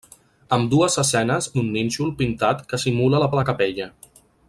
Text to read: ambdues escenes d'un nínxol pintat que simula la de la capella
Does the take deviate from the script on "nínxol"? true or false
false